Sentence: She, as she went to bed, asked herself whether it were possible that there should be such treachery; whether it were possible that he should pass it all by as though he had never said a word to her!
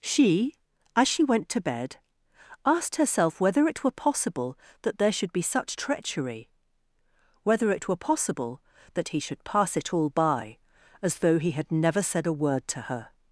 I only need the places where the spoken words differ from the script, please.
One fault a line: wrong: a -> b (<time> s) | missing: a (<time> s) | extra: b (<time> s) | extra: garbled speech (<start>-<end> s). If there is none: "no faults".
no faults